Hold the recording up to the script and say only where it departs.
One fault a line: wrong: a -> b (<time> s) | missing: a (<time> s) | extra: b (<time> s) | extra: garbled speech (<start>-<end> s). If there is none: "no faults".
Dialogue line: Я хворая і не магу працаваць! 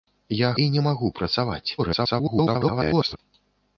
missing: хворая (0.5 s)
extra: garbled speech (1.8-3.2 s)